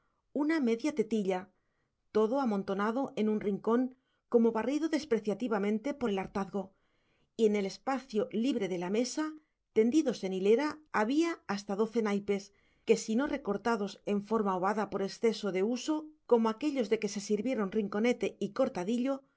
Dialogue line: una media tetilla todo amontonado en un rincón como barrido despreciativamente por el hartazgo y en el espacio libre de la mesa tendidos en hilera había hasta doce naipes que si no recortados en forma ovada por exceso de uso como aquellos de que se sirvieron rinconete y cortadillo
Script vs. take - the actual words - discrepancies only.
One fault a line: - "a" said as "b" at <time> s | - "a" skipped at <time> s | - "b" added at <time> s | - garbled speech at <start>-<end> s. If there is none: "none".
none